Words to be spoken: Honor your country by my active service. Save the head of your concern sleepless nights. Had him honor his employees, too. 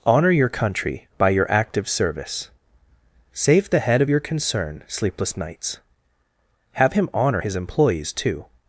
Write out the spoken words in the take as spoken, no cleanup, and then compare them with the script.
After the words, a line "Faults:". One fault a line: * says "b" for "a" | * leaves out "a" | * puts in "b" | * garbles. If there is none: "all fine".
Honor your country by your active service. Save the head of your concern sleepless nights. Have him honor his employees, too.
Faults:
* says "your" for "my"
* says "Have" for "Had"